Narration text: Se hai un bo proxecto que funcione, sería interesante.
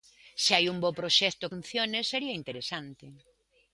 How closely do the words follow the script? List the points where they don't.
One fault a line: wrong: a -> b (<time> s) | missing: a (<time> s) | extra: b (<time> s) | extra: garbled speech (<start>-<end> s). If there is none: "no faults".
missing: que (1.5 s)